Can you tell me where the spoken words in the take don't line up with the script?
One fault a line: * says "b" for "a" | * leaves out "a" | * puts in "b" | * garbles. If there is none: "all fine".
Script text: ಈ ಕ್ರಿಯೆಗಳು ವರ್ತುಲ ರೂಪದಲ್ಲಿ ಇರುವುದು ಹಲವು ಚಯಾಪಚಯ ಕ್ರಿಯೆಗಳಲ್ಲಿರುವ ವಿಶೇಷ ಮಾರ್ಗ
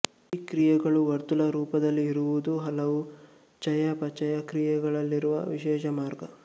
all fine